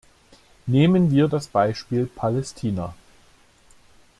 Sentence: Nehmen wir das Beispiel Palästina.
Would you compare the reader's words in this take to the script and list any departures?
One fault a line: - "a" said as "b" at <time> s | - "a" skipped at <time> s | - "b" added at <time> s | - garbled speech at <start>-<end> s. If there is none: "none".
none